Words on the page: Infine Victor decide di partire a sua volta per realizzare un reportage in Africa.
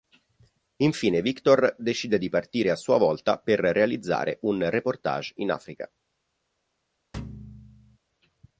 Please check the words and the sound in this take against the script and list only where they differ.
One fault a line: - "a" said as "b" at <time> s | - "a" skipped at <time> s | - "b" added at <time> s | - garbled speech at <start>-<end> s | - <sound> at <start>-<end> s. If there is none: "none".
- thud at 7.1-8.0 s